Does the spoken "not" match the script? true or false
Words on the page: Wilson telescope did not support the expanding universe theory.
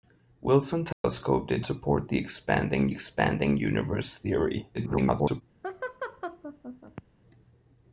false